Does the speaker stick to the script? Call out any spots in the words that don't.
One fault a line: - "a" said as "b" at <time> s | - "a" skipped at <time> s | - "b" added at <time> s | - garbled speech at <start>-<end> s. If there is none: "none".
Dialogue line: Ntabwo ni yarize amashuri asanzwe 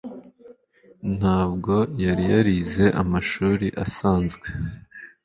- "ni" said as "yari" at 2.0 s